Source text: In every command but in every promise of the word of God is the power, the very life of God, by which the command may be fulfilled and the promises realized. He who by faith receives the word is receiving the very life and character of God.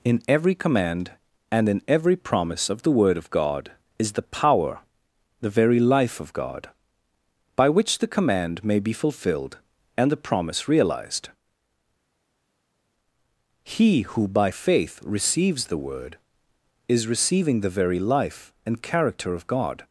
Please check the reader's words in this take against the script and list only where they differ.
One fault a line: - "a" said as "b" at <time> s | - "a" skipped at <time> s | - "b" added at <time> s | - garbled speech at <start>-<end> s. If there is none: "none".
- "but" said as "and" at 1.5 s
- "promises" said as "promise" at 10.2 s